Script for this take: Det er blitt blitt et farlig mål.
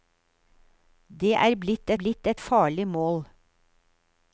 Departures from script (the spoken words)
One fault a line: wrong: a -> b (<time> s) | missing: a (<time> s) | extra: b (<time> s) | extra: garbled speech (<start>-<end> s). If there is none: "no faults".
no faults